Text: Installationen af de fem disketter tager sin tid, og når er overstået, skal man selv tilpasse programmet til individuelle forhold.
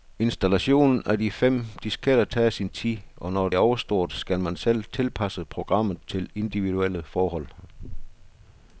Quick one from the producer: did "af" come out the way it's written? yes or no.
yes